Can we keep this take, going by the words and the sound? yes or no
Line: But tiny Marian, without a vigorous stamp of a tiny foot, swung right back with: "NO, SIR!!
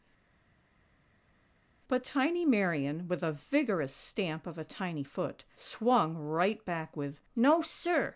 no